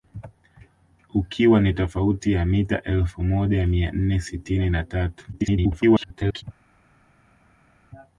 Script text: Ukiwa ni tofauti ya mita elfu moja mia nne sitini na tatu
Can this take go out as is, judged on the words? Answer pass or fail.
fail